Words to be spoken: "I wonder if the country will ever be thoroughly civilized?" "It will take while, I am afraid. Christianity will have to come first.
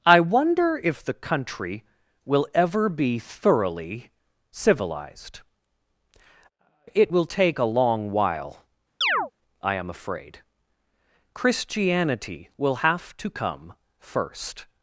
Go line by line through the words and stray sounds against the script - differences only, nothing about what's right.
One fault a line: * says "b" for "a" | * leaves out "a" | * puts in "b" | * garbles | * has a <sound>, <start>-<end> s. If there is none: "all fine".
* puts in "a long"
* has a chirp, 9.0-9.3 s